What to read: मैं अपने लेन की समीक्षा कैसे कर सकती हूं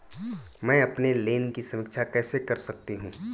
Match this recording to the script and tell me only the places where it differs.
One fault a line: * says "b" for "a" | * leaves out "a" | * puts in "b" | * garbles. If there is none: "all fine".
all fine